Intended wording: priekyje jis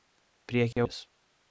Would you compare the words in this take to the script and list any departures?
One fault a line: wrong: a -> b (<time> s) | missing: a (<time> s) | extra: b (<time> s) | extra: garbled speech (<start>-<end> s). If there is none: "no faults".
no faults